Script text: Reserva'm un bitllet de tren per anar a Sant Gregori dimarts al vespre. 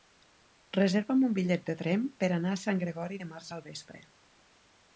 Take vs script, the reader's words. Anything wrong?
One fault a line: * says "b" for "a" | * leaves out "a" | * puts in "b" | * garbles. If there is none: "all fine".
all fine